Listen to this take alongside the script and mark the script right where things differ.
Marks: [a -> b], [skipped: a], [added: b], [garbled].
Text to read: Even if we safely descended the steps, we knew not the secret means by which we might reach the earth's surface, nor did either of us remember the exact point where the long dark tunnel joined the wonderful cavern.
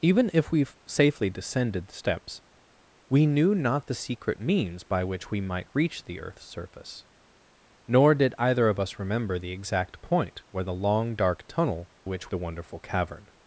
Even if we safely descended the steps, we knew not the secret means by which we might reach the earth's surface, nor did either of us remember the exact point where the long dark tunnel [joined -> which] the wonderful cavern.